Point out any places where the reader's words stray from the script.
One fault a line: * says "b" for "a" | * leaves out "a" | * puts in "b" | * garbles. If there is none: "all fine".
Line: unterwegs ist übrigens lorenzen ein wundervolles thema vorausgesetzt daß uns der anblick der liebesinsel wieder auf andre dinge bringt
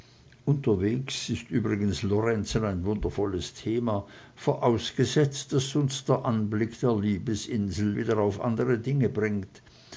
all fine